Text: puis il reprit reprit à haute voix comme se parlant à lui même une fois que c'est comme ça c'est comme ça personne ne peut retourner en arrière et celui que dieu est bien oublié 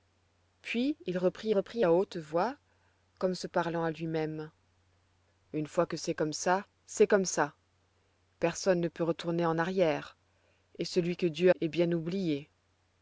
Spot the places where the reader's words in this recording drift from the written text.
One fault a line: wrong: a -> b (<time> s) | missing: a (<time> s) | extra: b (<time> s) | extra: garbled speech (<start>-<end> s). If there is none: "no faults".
no faults